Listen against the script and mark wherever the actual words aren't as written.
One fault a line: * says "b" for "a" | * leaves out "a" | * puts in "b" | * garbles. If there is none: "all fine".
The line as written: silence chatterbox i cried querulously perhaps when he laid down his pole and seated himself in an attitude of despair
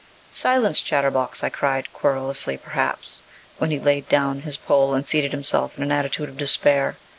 all fine